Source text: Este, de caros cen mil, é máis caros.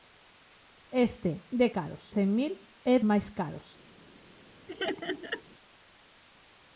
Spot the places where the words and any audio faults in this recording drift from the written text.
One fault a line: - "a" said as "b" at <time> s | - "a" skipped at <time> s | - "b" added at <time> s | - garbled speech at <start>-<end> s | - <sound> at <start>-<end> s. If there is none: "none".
- laugh at 4.7-5.4 s